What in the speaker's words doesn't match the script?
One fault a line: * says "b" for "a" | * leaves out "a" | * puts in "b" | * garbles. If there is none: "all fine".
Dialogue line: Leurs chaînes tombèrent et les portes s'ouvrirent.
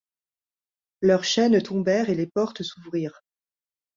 all fine